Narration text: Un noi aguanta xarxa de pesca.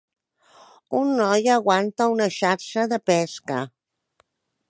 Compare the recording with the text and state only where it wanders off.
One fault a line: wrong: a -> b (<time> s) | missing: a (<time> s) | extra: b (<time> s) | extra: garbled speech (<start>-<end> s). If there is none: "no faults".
extra: una (2.1 s)